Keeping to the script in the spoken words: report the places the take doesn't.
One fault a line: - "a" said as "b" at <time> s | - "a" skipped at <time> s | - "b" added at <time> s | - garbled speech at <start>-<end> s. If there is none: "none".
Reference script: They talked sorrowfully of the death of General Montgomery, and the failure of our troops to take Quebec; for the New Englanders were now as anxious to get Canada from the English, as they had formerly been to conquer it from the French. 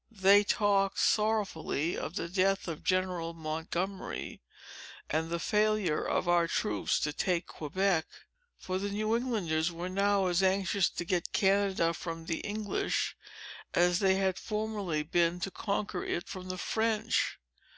none